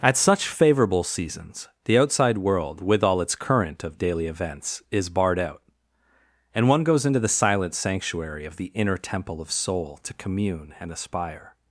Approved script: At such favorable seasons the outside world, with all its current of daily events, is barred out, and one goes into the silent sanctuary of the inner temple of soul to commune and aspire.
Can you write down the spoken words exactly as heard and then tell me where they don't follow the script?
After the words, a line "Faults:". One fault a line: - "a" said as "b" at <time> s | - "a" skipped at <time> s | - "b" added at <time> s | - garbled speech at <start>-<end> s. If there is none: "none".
At such favorable seasons the outside world, with all its current of daily events, is barred out, and one goes into the silent sanctuary of the inner temple of soul to commune and aspire.
Faults:
none